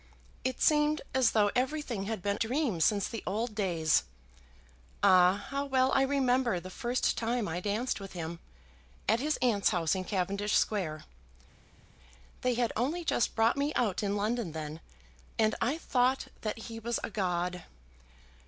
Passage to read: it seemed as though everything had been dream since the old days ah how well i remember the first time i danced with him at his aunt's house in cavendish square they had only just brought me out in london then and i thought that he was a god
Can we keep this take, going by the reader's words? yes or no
yes